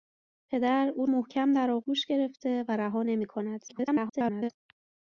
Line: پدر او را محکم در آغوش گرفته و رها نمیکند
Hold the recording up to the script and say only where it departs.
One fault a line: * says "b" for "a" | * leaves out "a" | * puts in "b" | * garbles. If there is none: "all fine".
* leaves out "را"
* garbles